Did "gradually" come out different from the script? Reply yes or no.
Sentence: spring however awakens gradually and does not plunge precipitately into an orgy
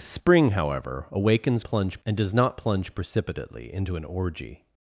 yes